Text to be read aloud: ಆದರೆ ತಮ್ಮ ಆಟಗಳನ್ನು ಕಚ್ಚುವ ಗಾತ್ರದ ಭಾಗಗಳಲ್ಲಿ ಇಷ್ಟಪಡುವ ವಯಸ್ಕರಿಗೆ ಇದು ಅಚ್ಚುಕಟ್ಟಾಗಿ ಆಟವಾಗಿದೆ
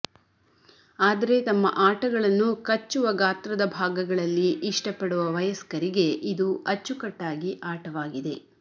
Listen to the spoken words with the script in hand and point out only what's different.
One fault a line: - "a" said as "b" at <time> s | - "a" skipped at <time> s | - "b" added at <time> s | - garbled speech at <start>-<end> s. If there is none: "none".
none